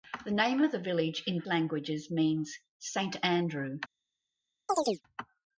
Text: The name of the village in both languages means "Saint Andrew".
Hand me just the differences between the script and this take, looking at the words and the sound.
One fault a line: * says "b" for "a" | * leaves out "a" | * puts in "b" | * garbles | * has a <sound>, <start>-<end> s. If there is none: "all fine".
* leaves out "both"
* has a chirp, 4.7-5.0 s